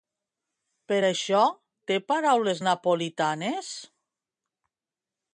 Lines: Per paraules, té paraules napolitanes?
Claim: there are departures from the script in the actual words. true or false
true